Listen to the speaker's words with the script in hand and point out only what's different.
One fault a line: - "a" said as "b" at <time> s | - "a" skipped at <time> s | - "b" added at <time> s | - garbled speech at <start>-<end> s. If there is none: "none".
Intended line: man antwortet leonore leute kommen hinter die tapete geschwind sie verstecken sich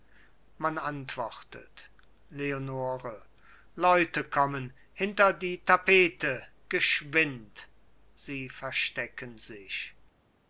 none